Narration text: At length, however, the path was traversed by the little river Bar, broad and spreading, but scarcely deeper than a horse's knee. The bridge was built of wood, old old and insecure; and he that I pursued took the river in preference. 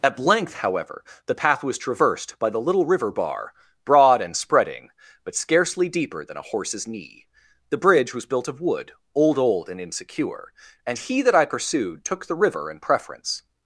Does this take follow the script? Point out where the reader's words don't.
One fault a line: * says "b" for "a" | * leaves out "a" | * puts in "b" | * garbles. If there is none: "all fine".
all fine